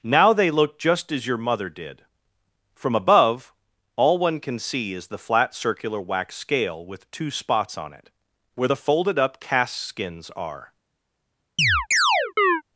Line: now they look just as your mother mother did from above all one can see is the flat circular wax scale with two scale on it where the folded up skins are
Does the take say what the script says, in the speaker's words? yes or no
no